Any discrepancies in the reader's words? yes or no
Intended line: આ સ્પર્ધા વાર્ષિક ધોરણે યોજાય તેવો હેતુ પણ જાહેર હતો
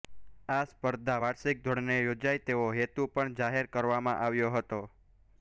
yes